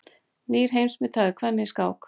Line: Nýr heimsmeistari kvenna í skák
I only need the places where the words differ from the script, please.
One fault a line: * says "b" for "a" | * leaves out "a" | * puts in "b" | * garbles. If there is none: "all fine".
all fine